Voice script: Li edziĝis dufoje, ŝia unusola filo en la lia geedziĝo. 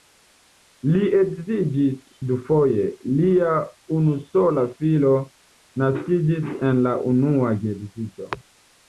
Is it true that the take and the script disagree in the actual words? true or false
true